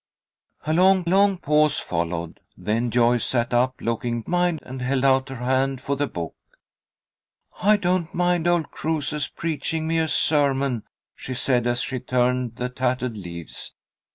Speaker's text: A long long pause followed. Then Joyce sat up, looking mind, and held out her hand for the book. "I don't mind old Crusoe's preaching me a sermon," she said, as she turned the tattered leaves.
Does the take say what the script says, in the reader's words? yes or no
yes